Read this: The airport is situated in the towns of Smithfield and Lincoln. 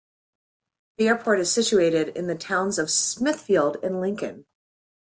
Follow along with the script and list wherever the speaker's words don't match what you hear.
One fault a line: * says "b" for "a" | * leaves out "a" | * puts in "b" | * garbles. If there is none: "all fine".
all fine